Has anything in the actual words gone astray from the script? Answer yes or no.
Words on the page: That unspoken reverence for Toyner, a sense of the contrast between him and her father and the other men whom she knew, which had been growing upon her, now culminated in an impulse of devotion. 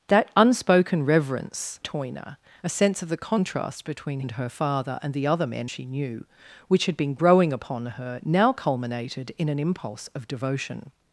yes